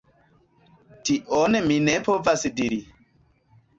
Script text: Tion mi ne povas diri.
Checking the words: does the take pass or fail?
pass